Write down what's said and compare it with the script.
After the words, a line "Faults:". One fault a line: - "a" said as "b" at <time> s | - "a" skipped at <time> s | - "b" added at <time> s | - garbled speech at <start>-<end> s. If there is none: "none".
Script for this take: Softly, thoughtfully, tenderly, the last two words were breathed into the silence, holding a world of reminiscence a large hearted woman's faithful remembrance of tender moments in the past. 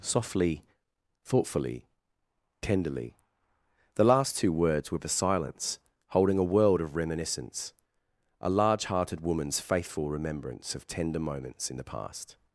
Softly, thoughtfully, tenderly, the last two words were the silence, holding a world of reminiscence a large hearted woman's faithful remembrance of tender moments in the past.
Faults:
- "breathed into" skipped at 5.0 s